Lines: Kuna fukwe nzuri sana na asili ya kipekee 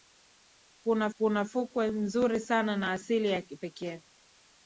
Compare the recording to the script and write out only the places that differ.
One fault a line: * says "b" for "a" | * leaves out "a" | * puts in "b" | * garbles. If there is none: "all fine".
* puts in "kuna"